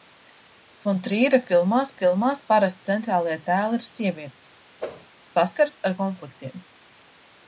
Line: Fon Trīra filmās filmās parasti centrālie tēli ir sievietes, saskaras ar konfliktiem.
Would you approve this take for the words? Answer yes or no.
yes